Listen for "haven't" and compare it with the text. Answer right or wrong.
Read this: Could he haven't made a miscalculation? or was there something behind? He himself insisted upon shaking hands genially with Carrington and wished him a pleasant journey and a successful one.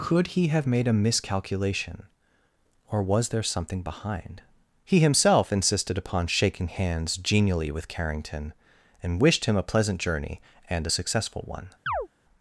wrong